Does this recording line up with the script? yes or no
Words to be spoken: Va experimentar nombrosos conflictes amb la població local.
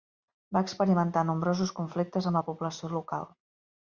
yes